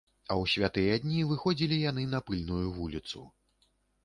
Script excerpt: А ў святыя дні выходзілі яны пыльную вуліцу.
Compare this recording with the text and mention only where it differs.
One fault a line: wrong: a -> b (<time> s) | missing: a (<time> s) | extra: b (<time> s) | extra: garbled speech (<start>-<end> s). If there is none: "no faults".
extra: на (2.1 s)